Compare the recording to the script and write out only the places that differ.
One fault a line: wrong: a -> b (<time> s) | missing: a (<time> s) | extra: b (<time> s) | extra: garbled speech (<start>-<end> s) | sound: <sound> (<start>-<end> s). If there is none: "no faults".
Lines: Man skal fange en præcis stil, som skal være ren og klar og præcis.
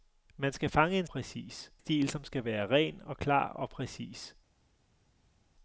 no faults